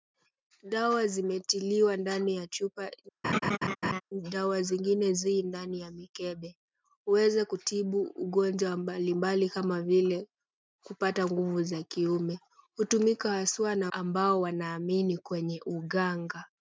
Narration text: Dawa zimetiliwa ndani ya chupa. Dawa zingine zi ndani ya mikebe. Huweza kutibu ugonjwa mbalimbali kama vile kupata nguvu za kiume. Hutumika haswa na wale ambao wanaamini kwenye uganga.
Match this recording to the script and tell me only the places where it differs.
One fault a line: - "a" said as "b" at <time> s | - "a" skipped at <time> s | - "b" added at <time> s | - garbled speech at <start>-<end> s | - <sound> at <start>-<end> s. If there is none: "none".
- laugh at 3.2-4.0 s
- "wale" skipped at 13.9 s